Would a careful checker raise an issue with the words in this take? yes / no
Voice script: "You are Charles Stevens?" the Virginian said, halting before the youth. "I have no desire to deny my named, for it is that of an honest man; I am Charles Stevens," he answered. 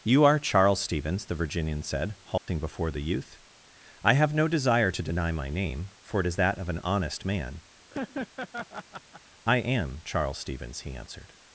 yes